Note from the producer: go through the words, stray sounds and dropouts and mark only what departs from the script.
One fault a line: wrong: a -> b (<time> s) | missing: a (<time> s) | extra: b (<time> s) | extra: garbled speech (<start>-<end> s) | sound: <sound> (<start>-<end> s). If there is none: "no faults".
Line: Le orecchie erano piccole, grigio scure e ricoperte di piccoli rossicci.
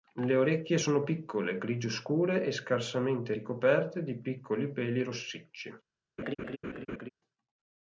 wrong: erano -> sono (0.8 s)
extra: scarsamente (2.5 s)
extra: peli (4.7 s)
sound: laugh (6.2-7.1 s)